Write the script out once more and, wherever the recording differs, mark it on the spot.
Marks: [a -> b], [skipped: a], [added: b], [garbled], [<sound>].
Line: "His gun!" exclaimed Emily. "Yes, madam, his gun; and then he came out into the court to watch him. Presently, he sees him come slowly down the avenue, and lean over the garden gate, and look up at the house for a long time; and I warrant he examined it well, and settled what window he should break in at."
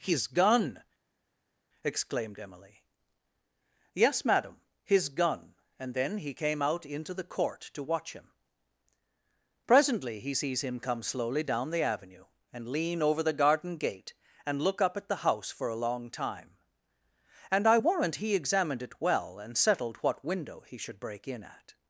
"His gun!" exclaimed Emily. "Yes, madam, his gun; and then he came out into the court to watch him. Presently, he sees him come slowly down the avenue, and lean over the garden gate, and look up at the house for a long time; and I warrant he examined it well, and settled what window he should break in at."